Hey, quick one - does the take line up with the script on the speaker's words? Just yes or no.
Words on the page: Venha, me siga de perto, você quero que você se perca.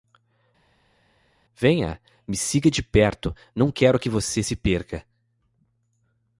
no